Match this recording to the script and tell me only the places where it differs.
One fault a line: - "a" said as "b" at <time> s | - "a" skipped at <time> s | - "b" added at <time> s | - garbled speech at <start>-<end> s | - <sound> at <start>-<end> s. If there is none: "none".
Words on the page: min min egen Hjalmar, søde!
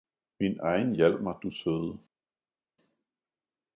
- "min" skipped at 0.6 s
- "du" added at 1.4 s